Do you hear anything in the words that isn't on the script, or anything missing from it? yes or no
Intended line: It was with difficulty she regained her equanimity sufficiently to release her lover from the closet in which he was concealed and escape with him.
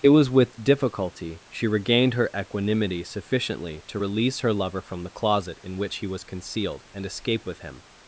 no